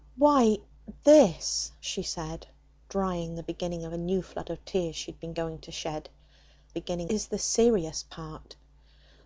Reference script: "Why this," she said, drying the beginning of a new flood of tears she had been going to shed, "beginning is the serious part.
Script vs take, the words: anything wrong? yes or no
no